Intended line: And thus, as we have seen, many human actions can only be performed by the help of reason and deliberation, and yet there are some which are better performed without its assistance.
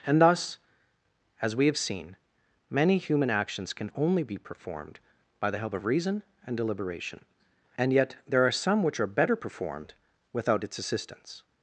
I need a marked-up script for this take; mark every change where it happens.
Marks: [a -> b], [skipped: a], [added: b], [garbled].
And thus, as we have seen, many human actions can only be performed by the help of reason and deliberation, and yet there are some which are better performed without its assistance.